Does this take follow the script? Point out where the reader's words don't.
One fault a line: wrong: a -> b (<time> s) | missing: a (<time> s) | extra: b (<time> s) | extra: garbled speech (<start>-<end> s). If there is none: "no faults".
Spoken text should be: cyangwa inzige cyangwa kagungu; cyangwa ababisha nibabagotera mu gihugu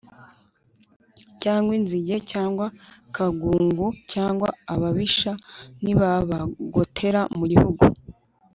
no faults